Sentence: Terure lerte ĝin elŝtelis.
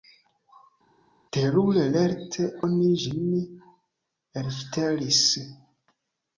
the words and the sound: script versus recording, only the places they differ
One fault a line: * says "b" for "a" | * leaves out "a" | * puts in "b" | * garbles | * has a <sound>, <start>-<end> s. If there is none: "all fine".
* puts in "oni"